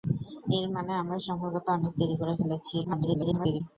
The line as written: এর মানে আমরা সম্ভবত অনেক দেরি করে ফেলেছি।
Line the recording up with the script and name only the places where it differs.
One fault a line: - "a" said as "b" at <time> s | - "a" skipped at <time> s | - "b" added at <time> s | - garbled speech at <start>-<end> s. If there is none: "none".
- garbled speech at 2.8-3.6 s